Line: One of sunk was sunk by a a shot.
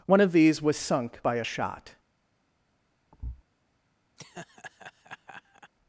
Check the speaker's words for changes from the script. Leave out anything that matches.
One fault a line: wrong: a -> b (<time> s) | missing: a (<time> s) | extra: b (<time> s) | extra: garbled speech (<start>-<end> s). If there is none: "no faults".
wrong: sunk -> these (0.3 s)
missing: a (1.4 s)